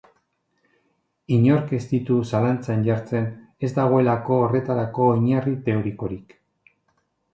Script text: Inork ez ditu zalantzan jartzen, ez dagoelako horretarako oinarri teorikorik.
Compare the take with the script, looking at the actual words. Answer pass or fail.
pass